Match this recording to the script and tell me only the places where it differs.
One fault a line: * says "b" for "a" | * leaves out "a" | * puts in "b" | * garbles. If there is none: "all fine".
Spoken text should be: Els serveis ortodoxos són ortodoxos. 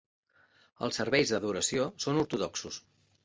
* says "d'adoració" for "ortodoxos"